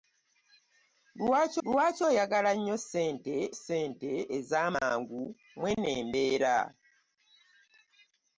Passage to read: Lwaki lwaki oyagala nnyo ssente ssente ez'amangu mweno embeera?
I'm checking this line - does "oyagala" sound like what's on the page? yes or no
yes